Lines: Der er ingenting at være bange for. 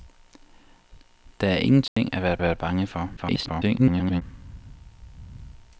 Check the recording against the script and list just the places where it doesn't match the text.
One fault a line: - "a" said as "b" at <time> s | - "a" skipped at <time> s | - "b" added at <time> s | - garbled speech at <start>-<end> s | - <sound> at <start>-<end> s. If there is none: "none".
- dropout at 1.9-2.0 s
- "være" added at 2.4 s
- garbled speech at 3.2-4.2 s